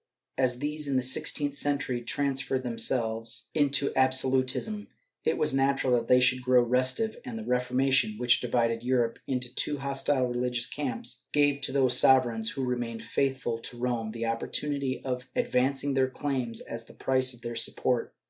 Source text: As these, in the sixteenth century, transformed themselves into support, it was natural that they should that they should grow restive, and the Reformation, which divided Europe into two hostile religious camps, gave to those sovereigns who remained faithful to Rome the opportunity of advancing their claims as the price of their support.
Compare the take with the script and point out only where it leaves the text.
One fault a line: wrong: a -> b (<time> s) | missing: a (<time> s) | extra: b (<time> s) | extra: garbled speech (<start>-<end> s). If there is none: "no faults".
wrong: support -> absolutism (4.0 s)
missing: that they should (6.4 s)